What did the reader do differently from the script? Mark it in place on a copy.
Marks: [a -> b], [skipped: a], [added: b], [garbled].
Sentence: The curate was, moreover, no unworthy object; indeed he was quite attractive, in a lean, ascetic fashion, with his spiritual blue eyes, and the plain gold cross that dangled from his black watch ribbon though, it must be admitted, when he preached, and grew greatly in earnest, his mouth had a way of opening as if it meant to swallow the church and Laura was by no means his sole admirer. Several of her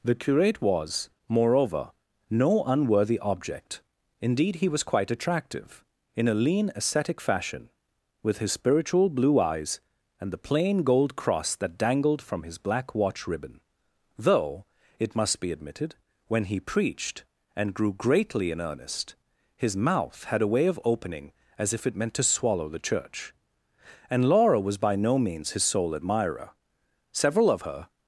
The curate was, moreover, no unworthy object; indeed he was quite attractive, in a lean, ascetic fashion, with his spiritual blue eyes, and the plain gold cross that dangled from his black watch ribbon though, it must be admitted, when he preached, and grew greatly in earnest, his mouth had a way of opening as if it meant to swallow the church and Laura was by no means his sole admirer. Several of her